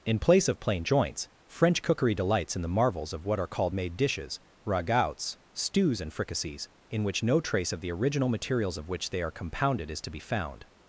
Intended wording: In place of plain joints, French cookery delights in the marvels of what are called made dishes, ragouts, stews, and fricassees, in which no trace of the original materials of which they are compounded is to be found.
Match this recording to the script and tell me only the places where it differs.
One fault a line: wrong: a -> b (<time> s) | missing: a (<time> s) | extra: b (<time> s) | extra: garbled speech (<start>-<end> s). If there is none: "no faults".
no faults